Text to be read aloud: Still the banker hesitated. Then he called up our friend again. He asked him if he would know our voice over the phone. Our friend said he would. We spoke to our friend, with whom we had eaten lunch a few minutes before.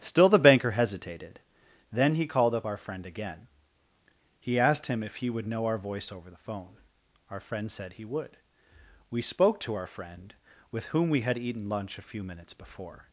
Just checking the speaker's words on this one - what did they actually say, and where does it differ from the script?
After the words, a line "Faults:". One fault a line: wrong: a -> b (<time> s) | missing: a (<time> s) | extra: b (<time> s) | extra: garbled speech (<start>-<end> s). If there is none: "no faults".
Still the banker hesitated. Then he called up our friend again. He asked him if he would know our voice over the phone. Our friend said he would. We spoke to our friend, with whom we had eaten lunch a few minutes before.
Faults:
no faults